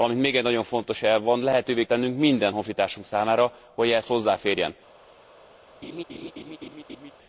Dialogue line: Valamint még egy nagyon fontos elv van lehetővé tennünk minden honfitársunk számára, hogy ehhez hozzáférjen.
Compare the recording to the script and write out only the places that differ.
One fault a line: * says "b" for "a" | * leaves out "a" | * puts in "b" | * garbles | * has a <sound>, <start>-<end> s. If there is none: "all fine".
* has a laugh, 5.8-7.1 s